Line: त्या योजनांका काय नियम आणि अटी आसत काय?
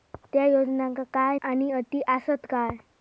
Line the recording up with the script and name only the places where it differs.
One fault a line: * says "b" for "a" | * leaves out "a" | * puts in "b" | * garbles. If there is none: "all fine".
* leaves out "नियम"